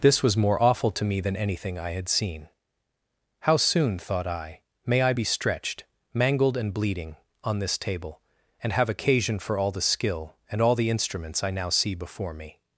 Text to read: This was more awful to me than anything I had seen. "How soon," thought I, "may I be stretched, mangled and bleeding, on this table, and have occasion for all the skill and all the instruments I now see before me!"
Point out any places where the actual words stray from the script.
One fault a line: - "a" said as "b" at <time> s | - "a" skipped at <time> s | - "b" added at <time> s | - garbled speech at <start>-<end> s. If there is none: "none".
none